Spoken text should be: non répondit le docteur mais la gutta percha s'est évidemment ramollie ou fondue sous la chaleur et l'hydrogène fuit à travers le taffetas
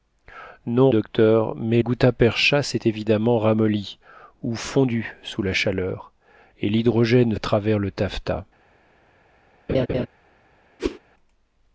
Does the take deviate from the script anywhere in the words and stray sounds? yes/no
yes